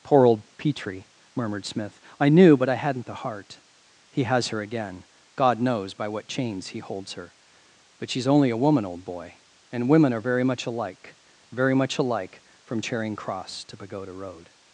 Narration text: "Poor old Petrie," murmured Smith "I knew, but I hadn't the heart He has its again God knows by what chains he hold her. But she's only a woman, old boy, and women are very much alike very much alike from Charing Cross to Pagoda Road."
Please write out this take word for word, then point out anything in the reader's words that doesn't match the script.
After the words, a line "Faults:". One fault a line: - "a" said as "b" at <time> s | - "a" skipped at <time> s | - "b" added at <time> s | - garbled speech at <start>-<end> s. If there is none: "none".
"Poor old Petrie," murmured Smith "I knew, but I hadn't the heart He has her again God knows by what chains he holds her. But she's only a woman, old boy, and women are very much alike very much alike from Charing Cross to Pagoda Road."
Faults:
- "its" said as "her" at 4.5 s
- "hold" said as "holds" at 6.8 s